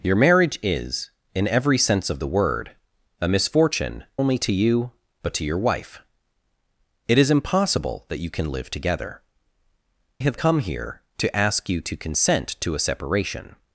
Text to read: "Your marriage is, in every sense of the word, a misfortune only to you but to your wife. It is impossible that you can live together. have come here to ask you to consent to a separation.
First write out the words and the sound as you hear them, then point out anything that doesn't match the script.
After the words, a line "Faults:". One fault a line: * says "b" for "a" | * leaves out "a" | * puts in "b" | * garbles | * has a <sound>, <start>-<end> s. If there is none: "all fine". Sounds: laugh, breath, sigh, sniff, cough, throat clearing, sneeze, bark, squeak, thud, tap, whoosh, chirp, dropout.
"Your marriage is, in every sense of the word, a misfortune only to you but to your wife. It is impossible that you can live together. have come here to ask you to consent to a separation.
Faults:
all fine